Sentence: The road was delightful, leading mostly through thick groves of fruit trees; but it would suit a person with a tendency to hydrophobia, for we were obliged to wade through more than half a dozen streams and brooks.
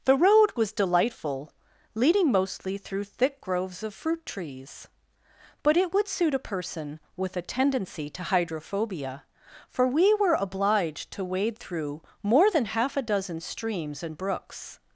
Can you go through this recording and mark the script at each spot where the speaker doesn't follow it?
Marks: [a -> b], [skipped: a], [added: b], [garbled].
The road was delightful, leading mostly through thick groves of fruit trees; but it would suit a person with a tendency to hydrophobia, for we were obliged to wade through more than half a dozen streams and brooks.